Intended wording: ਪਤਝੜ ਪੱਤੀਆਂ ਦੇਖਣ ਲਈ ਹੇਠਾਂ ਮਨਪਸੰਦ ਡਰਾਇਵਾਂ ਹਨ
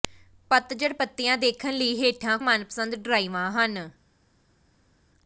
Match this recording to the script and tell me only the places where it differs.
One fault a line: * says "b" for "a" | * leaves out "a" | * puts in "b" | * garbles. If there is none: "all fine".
all fine